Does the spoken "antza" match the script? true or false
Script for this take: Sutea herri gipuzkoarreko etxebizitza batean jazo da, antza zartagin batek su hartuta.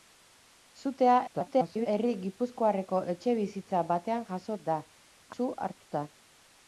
false